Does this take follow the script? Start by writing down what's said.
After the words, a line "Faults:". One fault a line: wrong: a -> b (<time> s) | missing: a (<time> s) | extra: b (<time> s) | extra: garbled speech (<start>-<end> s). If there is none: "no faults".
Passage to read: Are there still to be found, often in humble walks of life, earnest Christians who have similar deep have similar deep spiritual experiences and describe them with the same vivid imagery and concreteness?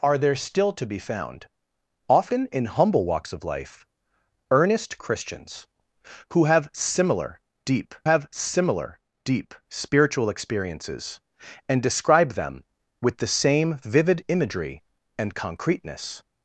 Are there still to be found, often in humble walks of life, earnest Christians who have similar deep have similar deep spiritual experiences and describe them with the same vivid imagery and concreteness?
Faults:
no faults